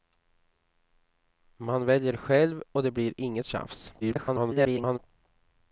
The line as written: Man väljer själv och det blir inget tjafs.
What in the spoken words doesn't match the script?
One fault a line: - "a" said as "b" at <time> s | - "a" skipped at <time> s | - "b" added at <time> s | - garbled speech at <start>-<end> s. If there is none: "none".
- garbled speech at 4.0-5.0 s